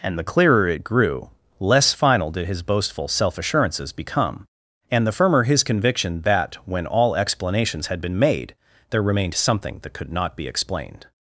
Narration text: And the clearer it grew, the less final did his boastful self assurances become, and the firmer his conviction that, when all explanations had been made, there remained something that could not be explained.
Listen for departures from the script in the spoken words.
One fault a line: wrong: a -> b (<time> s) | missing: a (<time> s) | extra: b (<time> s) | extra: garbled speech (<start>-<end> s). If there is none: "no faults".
missing: the (1.3 s)